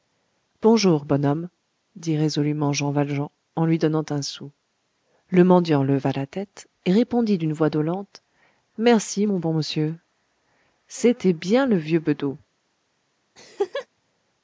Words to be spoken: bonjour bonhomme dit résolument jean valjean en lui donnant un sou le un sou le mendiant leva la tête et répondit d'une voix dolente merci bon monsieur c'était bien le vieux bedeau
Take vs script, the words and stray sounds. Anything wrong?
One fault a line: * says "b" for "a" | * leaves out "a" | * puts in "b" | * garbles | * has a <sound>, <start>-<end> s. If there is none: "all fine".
* leaves out "un sou le"
* puts in "mon"
* has a laugh, 13.3-13.9 s